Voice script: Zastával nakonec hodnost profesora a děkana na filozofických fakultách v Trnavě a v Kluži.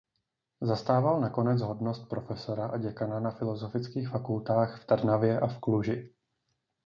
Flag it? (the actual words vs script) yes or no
no